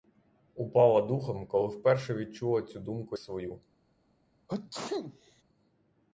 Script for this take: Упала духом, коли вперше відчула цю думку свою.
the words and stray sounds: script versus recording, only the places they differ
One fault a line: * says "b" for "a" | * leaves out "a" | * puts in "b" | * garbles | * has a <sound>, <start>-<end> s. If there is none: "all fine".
* has a sneeze, 4.5-5.4 s